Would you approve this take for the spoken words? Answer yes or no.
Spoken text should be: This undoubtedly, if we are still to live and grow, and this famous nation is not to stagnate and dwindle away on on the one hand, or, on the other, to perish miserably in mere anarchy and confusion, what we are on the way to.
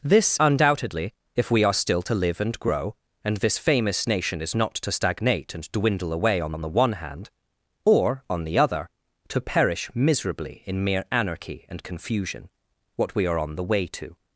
yes